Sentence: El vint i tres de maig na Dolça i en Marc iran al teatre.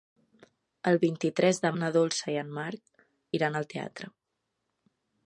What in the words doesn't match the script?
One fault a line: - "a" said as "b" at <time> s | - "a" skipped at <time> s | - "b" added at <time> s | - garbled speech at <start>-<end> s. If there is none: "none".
- "maig" skipped at 1.7 s